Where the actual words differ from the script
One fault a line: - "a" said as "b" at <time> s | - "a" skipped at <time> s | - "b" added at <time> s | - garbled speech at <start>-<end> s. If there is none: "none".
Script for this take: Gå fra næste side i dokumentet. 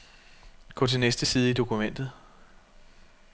- "fra" said as "til" at 0.9 s